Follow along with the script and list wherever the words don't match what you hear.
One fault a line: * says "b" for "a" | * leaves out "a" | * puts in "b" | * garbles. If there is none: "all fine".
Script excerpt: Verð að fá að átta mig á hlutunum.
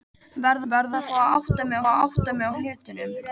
* puts in "verð"
* puts in "að átta mig"